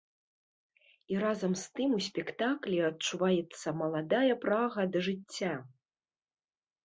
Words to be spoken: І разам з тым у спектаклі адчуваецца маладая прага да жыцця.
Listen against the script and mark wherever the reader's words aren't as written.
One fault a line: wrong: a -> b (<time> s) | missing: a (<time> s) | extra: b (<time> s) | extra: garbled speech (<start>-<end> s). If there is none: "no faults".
no faults